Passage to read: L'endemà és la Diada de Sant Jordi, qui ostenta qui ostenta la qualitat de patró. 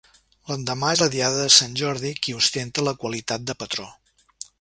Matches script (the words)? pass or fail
fail